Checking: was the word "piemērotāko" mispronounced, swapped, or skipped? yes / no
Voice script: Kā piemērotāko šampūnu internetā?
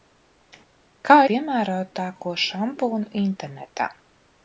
no